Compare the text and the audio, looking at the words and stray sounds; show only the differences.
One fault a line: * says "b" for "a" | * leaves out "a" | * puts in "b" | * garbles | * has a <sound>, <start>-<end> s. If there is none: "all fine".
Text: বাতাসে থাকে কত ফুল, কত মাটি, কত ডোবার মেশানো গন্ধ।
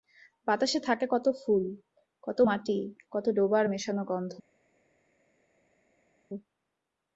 all fine